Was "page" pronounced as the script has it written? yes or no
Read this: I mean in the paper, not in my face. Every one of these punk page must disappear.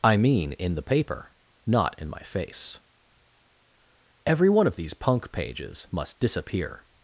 no